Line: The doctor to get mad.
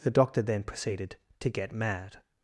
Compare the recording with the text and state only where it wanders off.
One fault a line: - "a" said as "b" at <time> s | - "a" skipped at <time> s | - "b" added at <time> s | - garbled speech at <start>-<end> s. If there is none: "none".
- "then proceeded" added at 0.4 s